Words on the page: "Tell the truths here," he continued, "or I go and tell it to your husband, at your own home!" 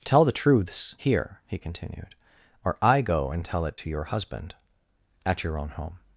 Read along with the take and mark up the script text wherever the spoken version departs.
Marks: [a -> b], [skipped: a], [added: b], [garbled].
"Tell the truths here," he continued, "or I go and tell it to your husband, at your own home!"